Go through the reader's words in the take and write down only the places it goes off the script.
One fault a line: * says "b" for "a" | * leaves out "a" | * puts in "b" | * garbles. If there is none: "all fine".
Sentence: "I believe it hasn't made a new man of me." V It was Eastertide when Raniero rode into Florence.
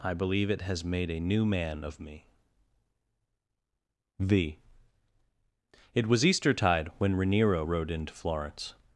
* says "has" for "hasn't"